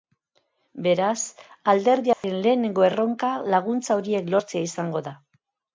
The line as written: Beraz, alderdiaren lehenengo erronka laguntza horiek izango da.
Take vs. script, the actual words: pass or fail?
fail